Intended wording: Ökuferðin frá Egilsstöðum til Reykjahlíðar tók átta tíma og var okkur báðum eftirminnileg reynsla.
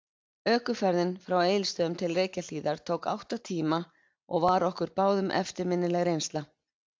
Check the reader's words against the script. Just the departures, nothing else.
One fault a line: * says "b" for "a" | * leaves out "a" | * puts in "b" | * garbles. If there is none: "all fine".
all fine